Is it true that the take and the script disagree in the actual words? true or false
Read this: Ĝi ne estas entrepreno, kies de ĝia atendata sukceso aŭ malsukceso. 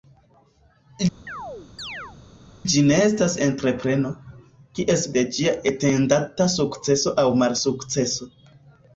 false